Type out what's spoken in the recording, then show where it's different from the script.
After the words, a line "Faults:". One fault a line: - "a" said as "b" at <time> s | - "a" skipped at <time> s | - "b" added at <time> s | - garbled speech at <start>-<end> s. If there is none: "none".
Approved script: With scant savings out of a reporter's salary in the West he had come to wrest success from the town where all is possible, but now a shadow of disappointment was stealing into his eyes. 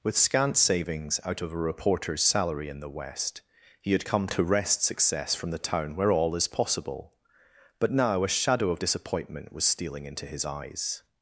With scant savings out of a reporter's salary in the West he had come to wrest success from the town where all is possible, but now a shadow of disappointment was stealing into his eyes.
Faults:
none